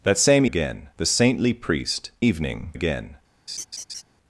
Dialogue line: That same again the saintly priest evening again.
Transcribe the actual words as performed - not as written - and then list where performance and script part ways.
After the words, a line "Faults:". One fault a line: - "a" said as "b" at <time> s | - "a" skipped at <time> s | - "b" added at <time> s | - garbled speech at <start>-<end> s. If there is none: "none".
That same again the saintly priest evening again.
Faults:
none